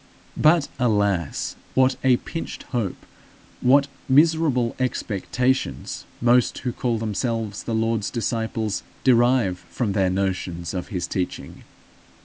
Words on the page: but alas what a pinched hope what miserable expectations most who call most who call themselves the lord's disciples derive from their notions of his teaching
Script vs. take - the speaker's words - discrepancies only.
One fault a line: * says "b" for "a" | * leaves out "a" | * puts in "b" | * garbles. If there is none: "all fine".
* leaves out "most who call"